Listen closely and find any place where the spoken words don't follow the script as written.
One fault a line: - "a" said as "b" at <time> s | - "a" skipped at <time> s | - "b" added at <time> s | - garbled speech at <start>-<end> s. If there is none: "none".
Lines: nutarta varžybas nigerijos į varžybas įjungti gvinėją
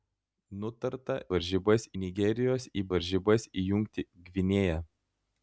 none